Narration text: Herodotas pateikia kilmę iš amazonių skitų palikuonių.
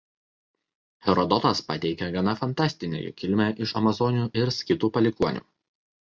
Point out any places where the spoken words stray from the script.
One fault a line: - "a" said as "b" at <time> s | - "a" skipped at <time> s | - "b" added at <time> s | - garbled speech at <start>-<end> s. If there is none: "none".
- "gana fantastinę jų" added at 2.1 s
- "ir" added at 4.4 s